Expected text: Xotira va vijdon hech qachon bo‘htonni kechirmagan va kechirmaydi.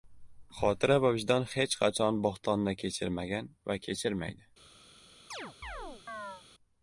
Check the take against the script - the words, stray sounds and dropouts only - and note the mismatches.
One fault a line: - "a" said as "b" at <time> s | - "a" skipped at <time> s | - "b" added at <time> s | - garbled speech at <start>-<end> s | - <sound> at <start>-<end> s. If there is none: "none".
- chirp at 5.3-6.4 s